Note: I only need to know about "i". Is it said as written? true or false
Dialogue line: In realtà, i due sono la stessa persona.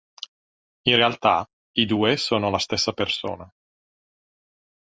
true